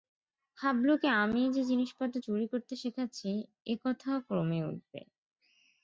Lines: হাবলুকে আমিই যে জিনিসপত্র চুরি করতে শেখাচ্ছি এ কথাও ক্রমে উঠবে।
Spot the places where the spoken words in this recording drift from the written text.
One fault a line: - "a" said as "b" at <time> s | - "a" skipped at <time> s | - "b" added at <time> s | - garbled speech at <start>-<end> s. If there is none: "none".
none